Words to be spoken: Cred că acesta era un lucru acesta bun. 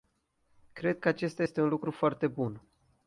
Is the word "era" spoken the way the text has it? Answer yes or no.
no